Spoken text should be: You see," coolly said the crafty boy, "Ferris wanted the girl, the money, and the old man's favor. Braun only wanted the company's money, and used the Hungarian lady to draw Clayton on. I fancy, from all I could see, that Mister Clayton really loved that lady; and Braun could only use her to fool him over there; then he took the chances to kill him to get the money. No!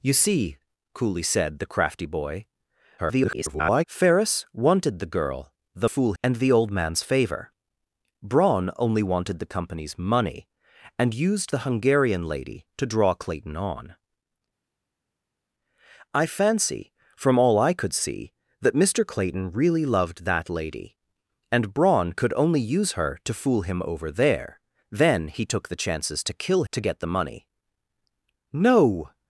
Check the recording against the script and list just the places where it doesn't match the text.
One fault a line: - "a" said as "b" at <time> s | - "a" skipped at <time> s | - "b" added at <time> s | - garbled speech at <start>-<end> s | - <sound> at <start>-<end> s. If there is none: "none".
- garbled speech at 3.0-3.8 s
- "money" said as "fool" at 5.8 s
- "him" skipped at 26.6 s